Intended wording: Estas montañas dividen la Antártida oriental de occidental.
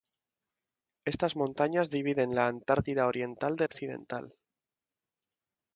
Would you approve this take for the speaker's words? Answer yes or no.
yes